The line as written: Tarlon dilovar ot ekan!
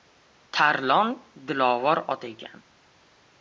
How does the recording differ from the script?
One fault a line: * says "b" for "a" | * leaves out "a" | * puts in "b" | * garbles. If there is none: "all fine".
all fine